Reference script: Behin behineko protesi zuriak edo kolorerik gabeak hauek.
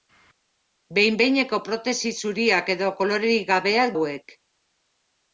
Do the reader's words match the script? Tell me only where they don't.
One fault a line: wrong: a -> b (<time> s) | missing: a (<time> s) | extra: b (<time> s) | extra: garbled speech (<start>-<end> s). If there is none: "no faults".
no faults